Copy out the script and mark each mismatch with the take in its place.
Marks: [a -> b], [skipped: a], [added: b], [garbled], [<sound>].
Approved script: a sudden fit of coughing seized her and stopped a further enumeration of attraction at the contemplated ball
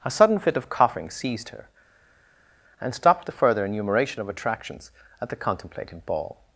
a sudden fit of coughing seized her and stopped [a -> the] further enumeration of [attraction -> attractions] at the contemplated ball